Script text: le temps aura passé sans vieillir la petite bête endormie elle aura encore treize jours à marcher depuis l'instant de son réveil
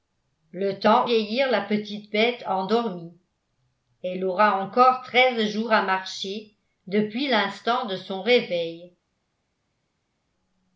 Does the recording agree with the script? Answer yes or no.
no